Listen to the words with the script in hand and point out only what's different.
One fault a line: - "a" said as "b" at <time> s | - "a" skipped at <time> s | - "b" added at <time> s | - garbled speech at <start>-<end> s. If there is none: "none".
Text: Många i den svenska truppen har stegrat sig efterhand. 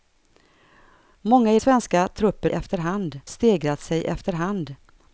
- "den" skipped at 1.6 s
- "har" said as "efterhand" at 2.5 s